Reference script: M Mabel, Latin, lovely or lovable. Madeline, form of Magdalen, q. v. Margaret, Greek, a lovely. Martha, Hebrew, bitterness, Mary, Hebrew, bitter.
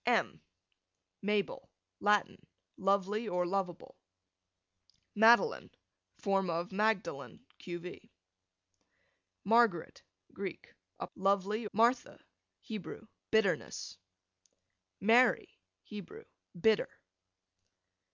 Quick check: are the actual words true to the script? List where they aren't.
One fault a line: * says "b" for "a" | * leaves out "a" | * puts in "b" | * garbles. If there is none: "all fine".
all fine